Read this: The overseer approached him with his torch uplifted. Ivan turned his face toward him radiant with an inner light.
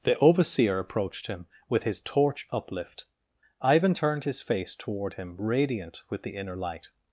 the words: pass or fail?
fail